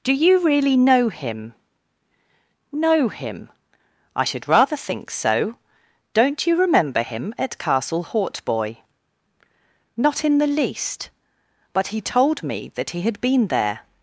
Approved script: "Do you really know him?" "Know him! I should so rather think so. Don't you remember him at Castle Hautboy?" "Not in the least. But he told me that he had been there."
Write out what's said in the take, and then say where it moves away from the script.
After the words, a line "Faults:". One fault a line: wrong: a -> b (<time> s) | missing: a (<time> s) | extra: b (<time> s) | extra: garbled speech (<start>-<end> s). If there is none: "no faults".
"Do you really know him?" "Know him! I should rather think so. Don't you remember him at Castle Hautboy?" "Not in the least. But he told me that he had been there."
Faults:
missing: so (4.5 s)